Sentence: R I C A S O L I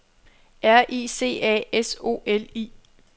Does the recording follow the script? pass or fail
pass